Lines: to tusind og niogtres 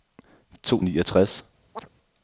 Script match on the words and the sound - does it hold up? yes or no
no